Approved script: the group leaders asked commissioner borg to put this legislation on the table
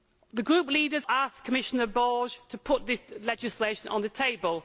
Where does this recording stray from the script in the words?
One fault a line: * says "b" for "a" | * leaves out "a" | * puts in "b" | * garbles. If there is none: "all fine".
all fine